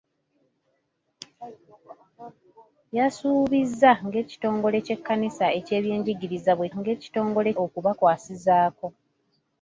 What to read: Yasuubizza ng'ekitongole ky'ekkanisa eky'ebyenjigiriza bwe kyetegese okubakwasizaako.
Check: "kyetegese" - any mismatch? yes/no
yes